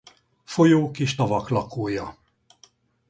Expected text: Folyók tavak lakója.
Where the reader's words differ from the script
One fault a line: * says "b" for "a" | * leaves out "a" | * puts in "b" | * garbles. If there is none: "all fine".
* puts in "és"